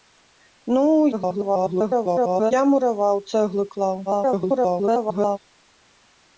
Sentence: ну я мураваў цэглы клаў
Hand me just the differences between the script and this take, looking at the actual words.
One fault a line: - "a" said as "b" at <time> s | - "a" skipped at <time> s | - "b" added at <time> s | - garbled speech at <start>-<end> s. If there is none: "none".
- garbled speech at 1.1-2.5 s
- garbled speech at 4.1-5.4 s